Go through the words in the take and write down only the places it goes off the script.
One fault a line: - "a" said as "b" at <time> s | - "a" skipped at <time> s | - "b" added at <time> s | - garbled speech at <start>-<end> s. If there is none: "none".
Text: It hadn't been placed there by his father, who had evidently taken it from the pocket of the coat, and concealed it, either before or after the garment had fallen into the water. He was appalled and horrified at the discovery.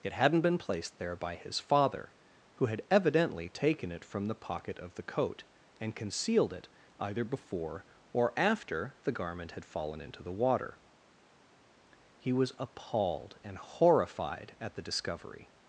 none